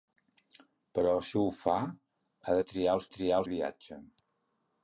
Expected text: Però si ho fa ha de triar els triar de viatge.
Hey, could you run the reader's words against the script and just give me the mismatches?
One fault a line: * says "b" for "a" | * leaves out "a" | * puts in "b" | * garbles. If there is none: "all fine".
all fine